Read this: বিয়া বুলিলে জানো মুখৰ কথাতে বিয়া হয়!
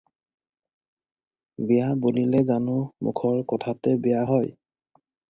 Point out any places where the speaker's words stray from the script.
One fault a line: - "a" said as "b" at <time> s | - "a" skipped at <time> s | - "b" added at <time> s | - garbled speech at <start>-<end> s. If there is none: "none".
none